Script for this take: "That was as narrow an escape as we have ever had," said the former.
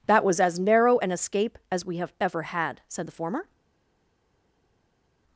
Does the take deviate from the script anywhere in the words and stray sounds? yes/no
no